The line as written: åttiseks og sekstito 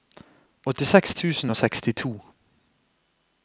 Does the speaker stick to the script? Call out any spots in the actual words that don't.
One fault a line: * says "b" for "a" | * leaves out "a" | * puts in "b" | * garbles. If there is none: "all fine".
* puts in "tusen"